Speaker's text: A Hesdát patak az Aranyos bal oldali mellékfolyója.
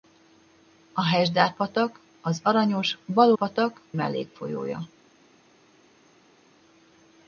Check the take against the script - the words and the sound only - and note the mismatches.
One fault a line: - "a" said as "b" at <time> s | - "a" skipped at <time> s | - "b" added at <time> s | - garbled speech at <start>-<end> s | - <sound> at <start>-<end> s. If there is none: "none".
- "oldali" said as "patak" at 3.4 s